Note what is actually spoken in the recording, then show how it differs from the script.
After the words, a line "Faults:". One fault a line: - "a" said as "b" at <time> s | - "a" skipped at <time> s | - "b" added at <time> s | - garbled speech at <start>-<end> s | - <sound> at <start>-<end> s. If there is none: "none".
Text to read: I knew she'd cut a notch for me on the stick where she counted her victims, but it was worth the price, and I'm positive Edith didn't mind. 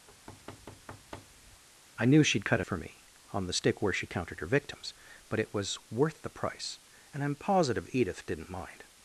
I knew she'd cut a for me on the stick where she counted her victims, but it was worth the price, and I'm positive Edith didn't mind.
Faults:
- thud at 0.1-1.6 s
- "notch" skipped at 2.6 s